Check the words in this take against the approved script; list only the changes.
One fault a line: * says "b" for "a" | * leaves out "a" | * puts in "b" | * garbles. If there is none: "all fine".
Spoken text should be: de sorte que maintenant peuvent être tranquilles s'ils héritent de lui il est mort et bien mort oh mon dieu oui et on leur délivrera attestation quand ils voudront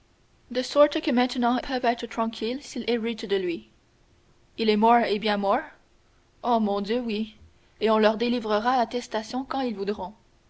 all fine